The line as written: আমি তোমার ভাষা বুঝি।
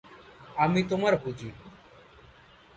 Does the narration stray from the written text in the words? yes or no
yes